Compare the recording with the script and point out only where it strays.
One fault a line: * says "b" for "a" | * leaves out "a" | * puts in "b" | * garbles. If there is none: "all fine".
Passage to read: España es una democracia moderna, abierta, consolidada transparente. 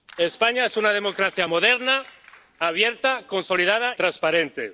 all fine